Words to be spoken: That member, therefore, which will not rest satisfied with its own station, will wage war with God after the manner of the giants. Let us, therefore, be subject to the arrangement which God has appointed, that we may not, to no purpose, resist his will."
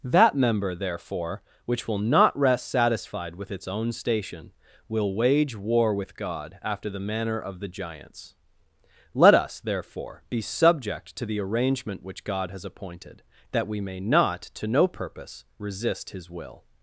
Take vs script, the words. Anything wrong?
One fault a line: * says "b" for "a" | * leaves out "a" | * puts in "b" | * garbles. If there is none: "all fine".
all fine